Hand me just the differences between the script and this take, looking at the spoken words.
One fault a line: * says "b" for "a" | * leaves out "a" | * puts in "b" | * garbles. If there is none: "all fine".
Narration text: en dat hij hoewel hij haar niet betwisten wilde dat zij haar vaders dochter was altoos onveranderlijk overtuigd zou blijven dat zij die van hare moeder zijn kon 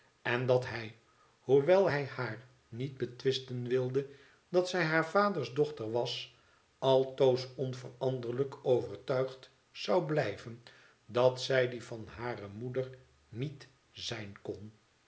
* puts in "niet"